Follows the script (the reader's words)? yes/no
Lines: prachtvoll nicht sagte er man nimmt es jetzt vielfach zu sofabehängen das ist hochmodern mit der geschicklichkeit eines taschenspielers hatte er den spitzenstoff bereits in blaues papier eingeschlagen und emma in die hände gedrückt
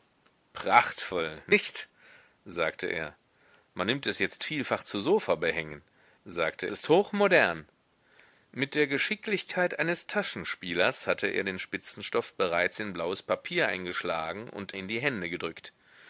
no